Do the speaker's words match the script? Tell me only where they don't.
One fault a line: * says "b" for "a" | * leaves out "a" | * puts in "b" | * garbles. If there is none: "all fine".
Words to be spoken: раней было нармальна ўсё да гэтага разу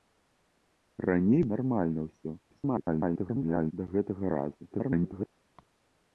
* leaves out "было"
* garbles
* garbles